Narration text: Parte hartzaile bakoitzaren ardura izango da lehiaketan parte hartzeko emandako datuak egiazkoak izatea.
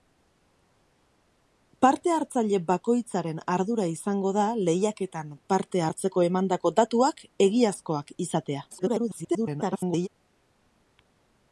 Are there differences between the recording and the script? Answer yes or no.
yes